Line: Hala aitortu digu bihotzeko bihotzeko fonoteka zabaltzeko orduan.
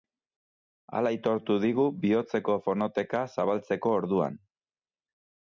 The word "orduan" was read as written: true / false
true